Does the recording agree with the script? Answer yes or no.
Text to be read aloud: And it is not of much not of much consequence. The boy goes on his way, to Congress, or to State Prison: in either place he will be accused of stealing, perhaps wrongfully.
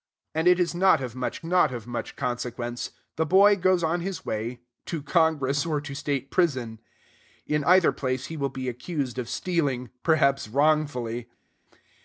yes